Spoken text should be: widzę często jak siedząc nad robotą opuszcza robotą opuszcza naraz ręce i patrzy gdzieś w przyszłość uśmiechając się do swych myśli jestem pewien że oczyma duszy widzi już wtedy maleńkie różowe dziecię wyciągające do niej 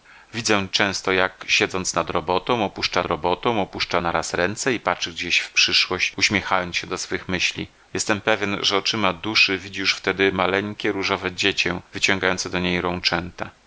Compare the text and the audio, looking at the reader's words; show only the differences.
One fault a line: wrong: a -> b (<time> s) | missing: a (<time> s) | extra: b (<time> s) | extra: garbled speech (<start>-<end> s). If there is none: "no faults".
no faults